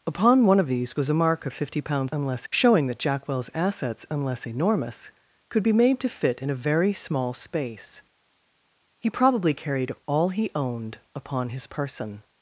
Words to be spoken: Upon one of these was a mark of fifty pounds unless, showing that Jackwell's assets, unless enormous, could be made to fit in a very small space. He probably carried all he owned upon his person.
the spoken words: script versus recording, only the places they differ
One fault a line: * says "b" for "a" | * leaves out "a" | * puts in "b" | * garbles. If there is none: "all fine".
all fine